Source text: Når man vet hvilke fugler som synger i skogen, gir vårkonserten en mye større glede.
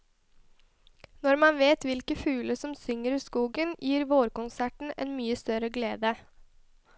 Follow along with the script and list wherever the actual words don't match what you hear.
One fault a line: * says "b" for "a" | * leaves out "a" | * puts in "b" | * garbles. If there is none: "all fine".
all fine